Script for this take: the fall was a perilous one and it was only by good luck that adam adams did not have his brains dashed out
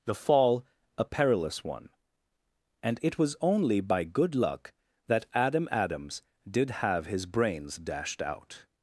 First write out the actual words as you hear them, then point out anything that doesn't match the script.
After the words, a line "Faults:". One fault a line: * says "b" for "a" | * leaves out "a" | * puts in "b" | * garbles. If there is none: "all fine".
the fall a perilous one and it was only by good luck that adam adams did have his brains dashed out
Faults:
* leaves out "was"
* leaves out "not"